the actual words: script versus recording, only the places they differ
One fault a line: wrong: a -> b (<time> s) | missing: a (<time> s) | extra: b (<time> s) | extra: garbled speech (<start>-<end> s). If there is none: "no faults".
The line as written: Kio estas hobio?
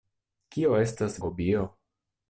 no faults